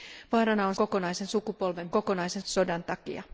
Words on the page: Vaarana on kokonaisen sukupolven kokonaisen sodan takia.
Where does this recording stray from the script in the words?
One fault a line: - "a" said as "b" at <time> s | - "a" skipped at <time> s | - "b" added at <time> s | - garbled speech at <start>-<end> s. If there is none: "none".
none